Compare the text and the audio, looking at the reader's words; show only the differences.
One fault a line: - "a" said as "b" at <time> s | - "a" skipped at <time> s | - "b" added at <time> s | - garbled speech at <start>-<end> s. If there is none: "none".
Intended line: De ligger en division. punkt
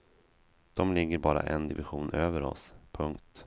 - "bara" added at 1.2 s
- "över oss" added at 2.1 s